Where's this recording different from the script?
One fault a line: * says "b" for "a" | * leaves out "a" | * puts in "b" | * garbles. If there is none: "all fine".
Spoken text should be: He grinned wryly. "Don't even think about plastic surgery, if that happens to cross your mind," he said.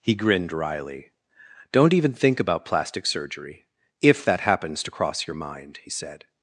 all fine